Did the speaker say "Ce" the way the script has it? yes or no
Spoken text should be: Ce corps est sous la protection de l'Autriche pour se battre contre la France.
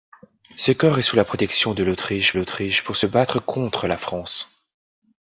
yes